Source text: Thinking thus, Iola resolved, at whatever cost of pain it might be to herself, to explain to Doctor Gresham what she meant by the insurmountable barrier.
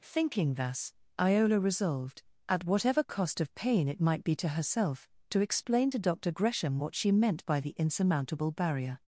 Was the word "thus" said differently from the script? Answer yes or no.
no